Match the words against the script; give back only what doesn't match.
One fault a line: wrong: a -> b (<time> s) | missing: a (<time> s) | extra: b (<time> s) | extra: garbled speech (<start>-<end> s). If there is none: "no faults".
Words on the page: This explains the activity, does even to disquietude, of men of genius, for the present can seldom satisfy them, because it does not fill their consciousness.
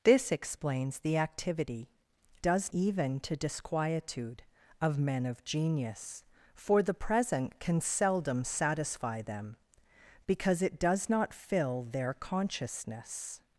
no faults